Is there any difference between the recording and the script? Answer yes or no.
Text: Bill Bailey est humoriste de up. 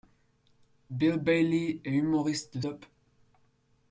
no